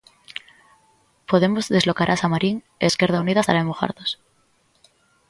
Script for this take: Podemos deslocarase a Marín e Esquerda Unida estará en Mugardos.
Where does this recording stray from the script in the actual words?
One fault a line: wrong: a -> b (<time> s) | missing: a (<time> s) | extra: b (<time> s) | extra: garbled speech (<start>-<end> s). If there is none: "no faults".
no faults